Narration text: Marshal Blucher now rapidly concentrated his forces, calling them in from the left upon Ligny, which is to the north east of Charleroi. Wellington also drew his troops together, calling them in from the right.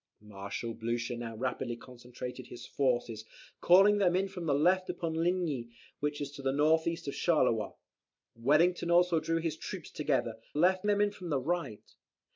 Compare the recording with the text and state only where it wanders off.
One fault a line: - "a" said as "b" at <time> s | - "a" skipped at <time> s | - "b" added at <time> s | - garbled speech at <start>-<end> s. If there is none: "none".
- "calling" said as "left" at 10.5 s